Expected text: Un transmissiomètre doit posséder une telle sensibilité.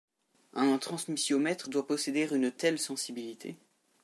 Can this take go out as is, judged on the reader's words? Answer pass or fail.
pass